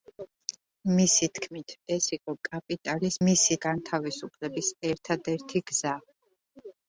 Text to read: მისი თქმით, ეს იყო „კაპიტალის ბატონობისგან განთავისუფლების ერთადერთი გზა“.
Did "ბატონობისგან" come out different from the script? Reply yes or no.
yes